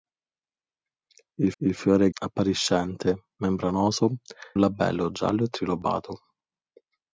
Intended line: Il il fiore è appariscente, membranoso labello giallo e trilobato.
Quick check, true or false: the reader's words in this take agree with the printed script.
true